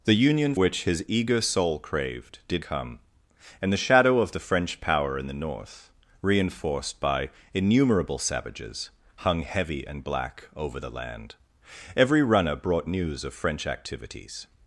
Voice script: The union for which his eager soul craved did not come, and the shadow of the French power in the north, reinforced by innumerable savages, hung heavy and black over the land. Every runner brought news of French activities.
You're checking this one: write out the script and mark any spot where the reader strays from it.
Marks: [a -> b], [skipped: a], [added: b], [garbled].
The union [skipped: for] which his eager soul craved did [skipped: not] come, and the shadow of the French power in the north, reinforced by innumerable savages, hung heavy and black over the land. Every runner brought news of French activities.